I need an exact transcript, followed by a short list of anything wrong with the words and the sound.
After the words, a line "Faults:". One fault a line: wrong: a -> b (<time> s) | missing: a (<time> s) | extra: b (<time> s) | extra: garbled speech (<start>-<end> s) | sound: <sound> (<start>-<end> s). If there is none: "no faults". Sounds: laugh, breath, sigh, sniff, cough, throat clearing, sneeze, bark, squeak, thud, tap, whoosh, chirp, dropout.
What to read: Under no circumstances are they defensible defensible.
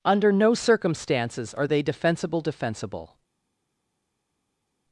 Under no circumstances are they defensible defensible.
Faults:
no faults